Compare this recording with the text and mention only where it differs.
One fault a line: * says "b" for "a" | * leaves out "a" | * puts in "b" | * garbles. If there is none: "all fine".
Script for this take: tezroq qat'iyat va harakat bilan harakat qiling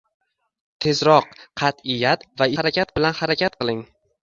all fine